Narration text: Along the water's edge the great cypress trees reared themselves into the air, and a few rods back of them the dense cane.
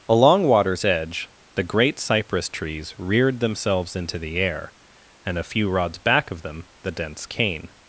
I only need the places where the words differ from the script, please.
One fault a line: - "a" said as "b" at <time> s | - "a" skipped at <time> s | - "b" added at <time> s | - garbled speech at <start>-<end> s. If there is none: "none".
- "the" skipped at 0.5 s